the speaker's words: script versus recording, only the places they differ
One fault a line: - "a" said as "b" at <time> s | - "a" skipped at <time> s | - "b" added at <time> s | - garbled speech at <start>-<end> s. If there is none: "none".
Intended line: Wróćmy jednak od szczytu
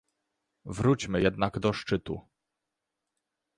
- "od" said as "do" at 1.6 s